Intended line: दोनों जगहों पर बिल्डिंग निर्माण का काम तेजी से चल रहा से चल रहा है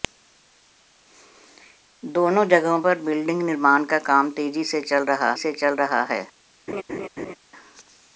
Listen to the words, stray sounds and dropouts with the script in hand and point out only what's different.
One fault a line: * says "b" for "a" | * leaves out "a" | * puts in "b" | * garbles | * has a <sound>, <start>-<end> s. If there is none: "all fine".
* has a laugh, 6.7-7.4 s